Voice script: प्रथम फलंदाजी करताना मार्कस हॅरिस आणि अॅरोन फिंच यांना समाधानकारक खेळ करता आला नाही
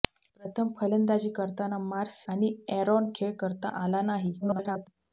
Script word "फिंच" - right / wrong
wrong